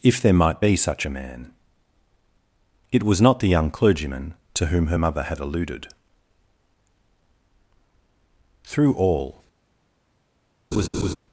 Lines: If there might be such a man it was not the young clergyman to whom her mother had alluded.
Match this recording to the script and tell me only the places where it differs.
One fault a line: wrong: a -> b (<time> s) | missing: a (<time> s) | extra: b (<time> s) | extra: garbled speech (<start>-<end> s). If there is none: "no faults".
extra: Through all (8.6 s)